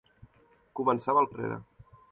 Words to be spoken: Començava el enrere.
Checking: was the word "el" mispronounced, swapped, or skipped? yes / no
no